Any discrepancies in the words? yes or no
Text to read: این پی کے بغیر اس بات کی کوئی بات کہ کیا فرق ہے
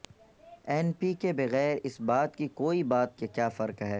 no